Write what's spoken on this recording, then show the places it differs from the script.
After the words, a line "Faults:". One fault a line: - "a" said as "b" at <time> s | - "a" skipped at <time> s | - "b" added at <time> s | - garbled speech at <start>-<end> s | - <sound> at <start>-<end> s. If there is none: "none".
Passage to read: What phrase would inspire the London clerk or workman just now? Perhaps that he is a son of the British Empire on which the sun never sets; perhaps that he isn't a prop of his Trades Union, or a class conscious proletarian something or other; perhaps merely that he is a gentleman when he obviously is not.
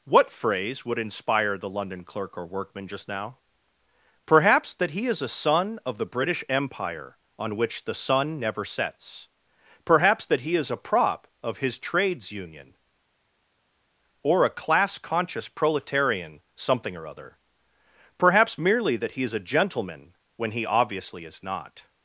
What phrase would inspire the London clerk or workman just now? Perhaps that he is a son of the British Empire on which the sun never sets; perhaps that he is a prop of his Trades Union, or a class conscious proletarian something or other; perhaps merely that he is a gentleman when he obviously is not.
Faults:
- "isn't" said as "is" at 10.6 s